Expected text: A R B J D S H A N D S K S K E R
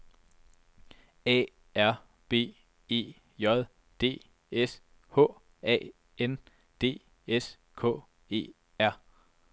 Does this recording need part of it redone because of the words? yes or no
yes